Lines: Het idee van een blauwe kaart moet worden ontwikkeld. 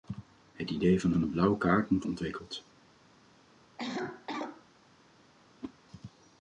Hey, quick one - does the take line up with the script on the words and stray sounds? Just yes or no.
no